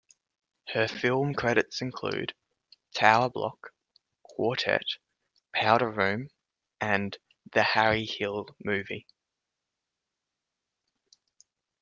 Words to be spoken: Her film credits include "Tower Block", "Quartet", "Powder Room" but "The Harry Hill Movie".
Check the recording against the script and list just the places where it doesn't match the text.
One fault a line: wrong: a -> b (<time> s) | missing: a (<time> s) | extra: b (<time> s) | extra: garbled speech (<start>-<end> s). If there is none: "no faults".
wrong: but -> and (6.8 s)